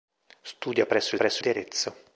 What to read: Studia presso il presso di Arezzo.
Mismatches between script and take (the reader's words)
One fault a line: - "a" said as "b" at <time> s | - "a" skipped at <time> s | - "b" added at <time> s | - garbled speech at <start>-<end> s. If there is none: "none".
none